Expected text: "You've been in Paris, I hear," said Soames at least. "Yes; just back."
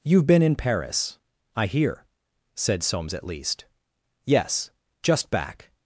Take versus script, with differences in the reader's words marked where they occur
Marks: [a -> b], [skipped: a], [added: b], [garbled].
"You've been in Paris, I hear," said Soames at least. "Yes; just back."